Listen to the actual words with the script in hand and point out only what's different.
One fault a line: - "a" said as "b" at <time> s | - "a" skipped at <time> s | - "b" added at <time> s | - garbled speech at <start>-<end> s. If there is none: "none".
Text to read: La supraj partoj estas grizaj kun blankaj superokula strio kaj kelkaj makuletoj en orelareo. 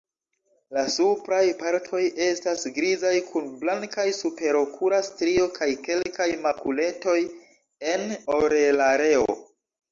none